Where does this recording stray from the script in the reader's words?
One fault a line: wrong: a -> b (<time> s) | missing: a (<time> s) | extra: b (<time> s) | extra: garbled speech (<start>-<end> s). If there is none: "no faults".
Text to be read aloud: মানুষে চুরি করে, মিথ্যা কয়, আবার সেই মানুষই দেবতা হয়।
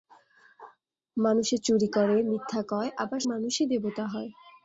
missing: সেই (3.2 s)